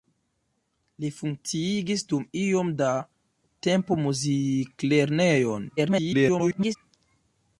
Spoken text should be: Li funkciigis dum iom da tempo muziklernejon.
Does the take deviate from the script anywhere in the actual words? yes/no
yes